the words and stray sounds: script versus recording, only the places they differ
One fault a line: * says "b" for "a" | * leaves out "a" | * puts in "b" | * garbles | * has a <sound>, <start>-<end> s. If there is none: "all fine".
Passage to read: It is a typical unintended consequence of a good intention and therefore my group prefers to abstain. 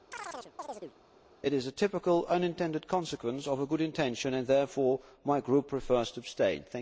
* has a chirp, 0.1-1.0 s